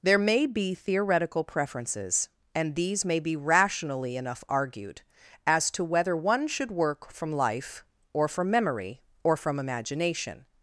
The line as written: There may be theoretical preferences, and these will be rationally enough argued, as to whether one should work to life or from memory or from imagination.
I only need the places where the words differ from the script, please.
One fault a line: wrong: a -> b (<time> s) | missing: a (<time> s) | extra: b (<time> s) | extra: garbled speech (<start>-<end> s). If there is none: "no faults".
wrong: will -> may (3.0 s)
wrong: to -> from (7.1 s)